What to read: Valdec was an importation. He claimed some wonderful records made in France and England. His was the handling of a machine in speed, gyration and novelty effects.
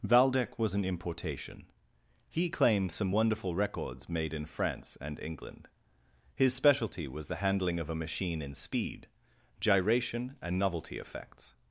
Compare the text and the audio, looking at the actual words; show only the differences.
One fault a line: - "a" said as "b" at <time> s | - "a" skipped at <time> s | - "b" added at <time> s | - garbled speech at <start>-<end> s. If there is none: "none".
- "specialty" added at 6.5 s